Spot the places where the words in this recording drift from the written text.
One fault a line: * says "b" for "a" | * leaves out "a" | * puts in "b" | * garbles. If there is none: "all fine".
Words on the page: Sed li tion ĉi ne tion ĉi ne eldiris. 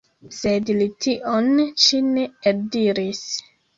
* leaves out "tion ĉi ne"